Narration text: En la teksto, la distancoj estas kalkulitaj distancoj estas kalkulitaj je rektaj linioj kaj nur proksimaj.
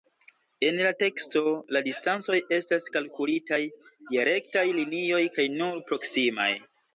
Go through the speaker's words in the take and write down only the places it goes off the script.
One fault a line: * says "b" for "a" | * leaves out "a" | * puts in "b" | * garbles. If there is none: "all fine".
* leaves out "distancoj estas kalkulitaj"